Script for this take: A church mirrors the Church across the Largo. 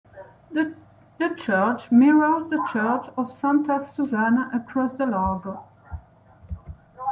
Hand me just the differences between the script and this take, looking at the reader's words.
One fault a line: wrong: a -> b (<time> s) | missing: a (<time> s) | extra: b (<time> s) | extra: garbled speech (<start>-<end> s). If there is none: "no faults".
wrong: A -> The (0.5 s)
extra: of Santa Susanna (3.2 s)